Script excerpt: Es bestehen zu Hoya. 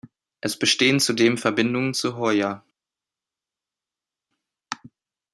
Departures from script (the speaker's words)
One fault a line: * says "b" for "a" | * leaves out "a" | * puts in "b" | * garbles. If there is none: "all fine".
* puts in "zudem Verbindungen"